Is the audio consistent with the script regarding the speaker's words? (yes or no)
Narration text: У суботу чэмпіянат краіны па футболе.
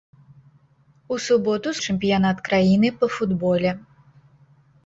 yes